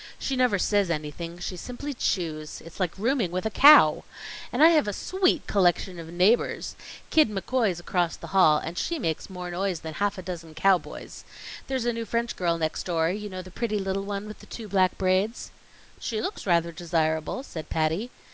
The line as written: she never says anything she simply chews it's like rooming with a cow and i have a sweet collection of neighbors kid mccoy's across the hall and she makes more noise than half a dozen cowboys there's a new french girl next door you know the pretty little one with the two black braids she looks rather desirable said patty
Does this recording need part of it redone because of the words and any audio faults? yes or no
no